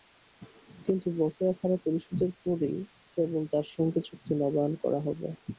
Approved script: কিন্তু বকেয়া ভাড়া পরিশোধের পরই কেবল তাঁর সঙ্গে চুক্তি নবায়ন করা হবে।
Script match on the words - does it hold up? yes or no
yes